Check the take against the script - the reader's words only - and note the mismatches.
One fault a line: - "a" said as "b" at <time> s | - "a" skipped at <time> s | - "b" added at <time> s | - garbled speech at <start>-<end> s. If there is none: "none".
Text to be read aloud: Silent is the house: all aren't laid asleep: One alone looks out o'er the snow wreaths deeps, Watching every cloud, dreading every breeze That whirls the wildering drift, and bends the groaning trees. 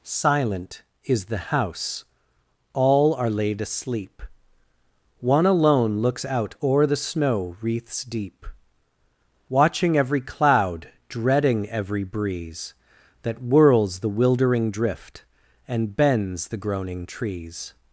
- "aren't" said as "are" at 3.1 s
- "deeps" said as "deep" at 8.0 s